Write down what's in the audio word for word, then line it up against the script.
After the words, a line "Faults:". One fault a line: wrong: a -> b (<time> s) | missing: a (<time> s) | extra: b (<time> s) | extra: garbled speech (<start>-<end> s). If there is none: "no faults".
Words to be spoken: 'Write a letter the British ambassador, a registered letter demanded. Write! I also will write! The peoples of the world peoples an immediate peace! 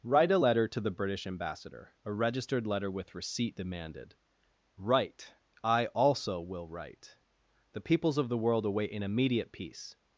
'Write a letter to the British ambassador, a registered letter with receipt demanded. Write! I also will write! The peoples of the world await an immediate peace!
Faults:
extra: to (0.7 s)
extra: with receipt (2.9 s)
wrong: peoples -> await (8.7 s)